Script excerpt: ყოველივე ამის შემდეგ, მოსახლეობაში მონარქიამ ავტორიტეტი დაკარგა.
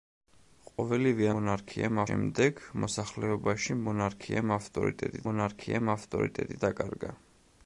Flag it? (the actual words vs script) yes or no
yes